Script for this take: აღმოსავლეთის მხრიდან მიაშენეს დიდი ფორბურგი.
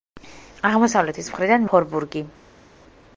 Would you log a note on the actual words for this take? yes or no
yes